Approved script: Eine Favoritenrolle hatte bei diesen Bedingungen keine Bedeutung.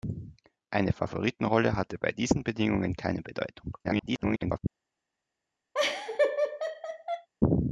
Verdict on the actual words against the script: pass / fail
fail